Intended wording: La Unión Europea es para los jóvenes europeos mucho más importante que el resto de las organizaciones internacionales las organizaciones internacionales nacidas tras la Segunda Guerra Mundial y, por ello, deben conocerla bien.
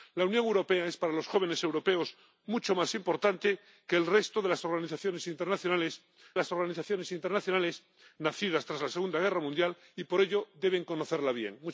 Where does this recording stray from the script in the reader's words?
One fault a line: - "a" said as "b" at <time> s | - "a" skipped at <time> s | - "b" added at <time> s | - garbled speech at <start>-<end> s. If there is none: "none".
none